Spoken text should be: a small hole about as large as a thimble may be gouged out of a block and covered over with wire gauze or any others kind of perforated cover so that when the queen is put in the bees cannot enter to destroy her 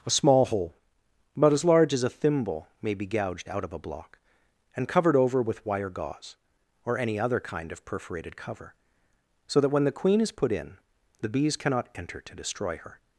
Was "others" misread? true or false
true